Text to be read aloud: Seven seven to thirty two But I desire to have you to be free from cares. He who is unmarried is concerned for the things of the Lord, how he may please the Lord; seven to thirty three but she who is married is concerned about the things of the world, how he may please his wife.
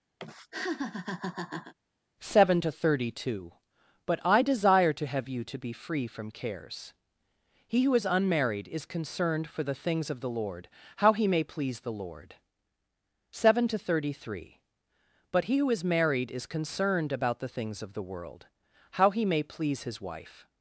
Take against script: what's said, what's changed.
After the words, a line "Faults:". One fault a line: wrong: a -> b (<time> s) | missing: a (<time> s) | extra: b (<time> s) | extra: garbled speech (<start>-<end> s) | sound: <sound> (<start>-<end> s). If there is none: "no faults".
Seven to thirty two But I desire to have you to be free from cares. He who is unmarried is concerned for the things of the Lord, how he may please the Lord; seven to thirty three but he who is married is concerned about the things of the world, how he may please his wife.
Faults:
sound: laugh (0.2-1.7 s)
missing: seven (2.6 s)
wrong: she -> he (15.4 s)